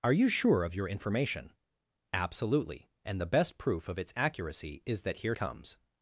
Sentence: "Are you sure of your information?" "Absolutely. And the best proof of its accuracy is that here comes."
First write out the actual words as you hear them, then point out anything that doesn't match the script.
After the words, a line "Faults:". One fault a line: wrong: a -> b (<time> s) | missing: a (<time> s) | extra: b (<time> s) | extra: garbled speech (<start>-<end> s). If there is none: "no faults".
"Are you sure of your information?" "Absolutely. And the best proof of its accuracy is that here comes."
Faults:
no faults